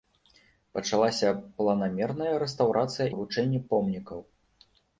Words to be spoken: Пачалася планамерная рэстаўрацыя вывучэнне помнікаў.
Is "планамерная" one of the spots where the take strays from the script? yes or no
no